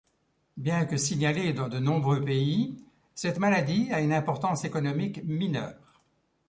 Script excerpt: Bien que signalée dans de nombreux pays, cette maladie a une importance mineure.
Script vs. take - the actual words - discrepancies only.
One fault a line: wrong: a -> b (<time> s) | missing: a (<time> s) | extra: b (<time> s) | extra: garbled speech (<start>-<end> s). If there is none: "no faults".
extra: économique (4.6 s)